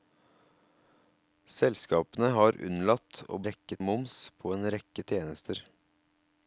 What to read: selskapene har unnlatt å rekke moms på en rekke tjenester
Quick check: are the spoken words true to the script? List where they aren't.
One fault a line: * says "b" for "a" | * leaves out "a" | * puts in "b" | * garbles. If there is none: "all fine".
all fine